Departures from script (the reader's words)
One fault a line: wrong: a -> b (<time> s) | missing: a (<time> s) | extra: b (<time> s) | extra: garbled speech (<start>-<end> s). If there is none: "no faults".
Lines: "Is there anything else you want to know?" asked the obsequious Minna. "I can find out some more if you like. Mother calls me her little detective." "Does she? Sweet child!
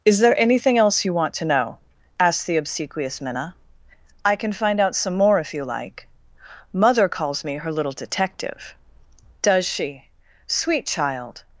no faults